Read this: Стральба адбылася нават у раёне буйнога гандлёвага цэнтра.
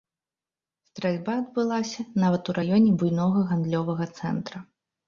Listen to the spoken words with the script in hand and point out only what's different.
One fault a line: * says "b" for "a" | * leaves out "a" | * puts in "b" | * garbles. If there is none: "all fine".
all fine